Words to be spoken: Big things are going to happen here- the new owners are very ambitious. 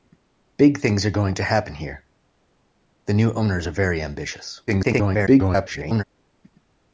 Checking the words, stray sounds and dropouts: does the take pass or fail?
fail